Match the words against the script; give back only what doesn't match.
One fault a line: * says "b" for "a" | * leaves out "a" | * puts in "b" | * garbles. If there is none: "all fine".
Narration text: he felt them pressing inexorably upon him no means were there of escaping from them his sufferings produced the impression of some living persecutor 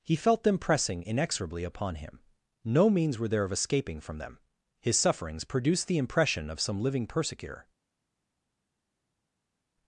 all fine